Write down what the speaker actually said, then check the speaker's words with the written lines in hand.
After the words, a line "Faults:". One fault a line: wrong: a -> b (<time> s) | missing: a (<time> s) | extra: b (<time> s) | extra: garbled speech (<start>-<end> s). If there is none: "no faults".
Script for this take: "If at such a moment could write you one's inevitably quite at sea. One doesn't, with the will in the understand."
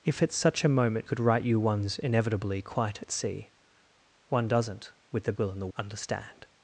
"If at such a moment could write you one's inevitably quite at sea. One doesn't, with the will in the understand."
Faults:
no faults